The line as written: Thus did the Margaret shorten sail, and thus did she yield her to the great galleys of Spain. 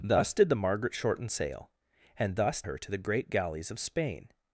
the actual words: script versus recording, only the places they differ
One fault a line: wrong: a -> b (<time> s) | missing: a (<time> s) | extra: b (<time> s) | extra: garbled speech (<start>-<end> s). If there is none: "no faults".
missing: did she yield (2.6 s)